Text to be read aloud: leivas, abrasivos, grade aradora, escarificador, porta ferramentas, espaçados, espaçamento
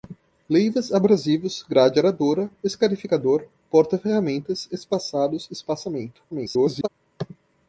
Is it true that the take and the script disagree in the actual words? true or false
true